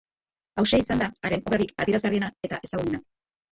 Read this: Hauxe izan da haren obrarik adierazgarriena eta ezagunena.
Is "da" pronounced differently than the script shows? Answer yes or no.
no